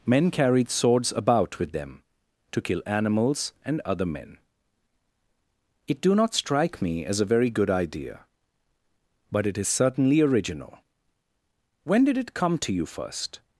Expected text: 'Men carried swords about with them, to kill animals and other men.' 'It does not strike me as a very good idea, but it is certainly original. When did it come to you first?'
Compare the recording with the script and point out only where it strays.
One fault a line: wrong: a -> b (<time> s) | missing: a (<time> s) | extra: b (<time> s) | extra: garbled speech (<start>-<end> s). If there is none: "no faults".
wrong: does -> do (6.0 s)